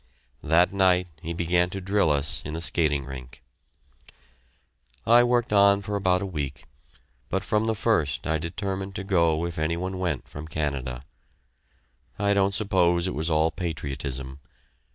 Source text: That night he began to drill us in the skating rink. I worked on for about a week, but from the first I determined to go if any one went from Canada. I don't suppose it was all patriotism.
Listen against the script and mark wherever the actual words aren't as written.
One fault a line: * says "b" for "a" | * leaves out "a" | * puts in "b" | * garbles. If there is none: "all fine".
all fine